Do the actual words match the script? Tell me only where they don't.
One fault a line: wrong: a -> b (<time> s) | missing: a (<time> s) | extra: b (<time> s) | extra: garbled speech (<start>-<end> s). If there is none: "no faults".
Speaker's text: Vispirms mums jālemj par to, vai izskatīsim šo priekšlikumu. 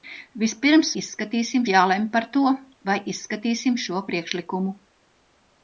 wrong: mums -> izskatīsim (1.0 s)